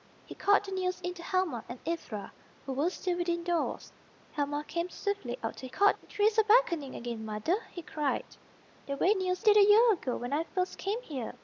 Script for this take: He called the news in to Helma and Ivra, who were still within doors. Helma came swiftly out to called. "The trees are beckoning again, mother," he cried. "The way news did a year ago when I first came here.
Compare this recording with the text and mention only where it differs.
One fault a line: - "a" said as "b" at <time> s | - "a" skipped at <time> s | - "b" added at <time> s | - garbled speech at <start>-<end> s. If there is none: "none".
none